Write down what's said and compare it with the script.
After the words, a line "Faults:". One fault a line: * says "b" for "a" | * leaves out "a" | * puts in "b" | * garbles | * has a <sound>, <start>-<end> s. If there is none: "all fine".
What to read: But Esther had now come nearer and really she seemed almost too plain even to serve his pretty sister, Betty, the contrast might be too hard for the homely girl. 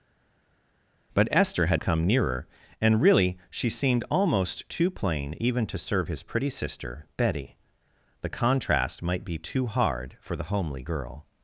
But Esther had come nearer and really she seemed almost too plain even to serve his pretty sister, Betty, the contrast might be too hard for the homely girl.
Faults:
* leaves out "now"